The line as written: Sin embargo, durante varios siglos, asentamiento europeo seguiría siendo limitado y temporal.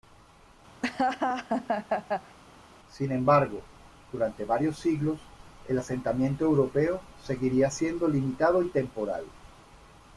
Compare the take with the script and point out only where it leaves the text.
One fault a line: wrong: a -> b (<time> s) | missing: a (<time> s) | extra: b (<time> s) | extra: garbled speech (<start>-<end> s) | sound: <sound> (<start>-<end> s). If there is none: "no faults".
sound: laugh (0.8-2.4 s)
extra: el (5.7 s)